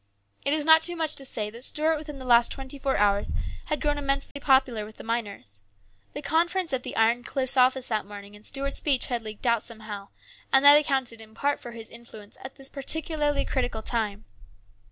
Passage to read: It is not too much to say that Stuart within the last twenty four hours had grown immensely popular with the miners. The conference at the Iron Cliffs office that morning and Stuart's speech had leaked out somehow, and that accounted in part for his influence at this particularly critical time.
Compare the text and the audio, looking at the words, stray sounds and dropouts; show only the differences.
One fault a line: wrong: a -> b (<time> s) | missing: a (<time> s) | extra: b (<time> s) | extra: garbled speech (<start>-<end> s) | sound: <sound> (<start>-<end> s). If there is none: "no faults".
sound: dropout (4.3-4.4 s)